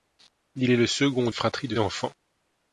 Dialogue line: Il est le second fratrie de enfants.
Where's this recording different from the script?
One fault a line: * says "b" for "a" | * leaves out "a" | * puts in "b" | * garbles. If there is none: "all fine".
all fine